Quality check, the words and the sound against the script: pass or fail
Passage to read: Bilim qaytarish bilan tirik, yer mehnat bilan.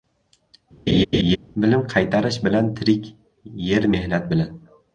fail